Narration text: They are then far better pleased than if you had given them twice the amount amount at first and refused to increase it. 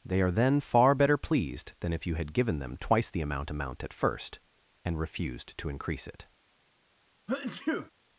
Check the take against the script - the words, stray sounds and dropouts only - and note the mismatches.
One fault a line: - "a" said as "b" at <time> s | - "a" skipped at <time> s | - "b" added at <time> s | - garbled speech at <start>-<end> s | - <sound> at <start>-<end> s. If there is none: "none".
- sneeze at 7.3-7.9 s